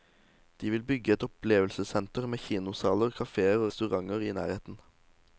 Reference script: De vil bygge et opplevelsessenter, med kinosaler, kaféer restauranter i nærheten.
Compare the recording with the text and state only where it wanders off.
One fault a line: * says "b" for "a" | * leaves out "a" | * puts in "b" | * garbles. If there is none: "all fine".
all fine